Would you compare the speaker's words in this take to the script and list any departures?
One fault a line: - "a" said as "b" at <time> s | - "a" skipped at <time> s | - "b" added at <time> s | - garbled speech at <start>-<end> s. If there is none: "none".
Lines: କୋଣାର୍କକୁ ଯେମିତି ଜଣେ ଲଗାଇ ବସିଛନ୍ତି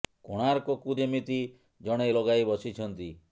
none